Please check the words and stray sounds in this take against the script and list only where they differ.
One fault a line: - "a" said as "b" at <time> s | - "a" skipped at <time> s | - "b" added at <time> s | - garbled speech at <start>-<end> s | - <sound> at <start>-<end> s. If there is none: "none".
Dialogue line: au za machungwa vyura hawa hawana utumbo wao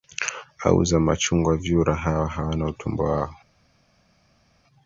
none